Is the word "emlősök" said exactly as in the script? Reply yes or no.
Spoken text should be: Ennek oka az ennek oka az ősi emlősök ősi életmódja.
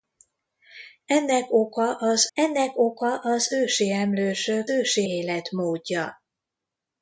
yes